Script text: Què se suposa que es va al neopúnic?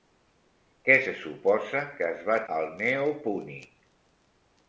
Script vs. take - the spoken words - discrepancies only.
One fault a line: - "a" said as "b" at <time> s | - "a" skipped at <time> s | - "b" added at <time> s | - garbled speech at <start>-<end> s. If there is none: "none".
none